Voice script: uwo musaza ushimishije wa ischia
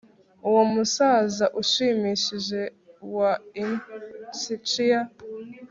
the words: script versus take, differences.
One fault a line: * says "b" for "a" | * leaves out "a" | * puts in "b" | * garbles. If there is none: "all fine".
all fine